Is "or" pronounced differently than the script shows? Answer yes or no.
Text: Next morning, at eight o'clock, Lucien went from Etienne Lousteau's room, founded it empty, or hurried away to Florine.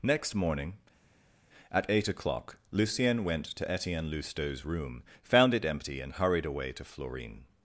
yes